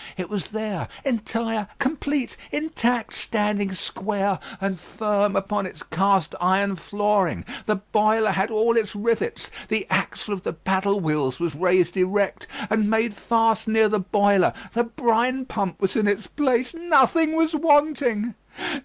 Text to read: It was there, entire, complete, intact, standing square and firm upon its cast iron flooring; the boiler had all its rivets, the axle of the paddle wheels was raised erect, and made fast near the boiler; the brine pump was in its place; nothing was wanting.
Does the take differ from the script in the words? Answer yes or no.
no